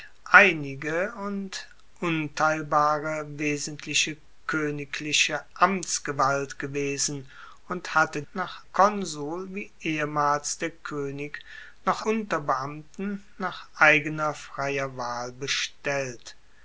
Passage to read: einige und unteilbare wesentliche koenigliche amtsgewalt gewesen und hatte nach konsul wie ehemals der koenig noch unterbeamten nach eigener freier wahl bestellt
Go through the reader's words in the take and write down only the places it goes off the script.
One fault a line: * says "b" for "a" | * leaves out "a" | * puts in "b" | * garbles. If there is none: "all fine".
all fine